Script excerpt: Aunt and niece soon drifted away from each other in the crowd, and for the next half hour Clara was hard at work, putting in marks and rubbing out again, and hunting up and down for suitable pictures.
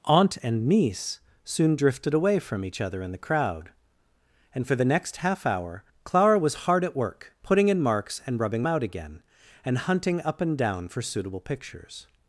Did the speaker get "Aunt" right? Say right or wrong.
right